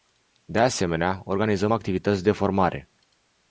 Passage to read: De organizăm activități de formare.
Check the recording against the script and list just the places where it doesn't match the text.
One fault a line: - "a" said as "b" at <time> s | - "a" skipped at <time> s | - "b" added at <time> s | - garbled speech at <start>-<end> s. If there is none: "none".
- "asemenea" added at 0.6 s